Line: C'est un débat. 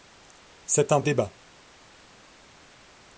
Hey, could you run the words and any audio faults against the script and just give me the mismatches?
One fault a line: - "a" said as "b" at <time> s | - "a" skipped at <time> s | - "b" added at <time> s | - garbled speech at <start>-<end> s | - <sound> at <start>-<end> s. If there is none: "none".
none